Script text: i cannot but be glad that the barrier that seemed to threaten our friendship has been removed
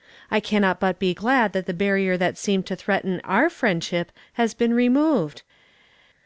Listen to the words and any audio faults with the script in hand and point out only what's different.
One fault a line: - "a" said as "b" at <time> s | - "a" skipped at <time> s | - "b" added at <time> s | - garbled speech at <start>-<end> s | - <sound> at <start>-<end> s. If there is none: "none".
none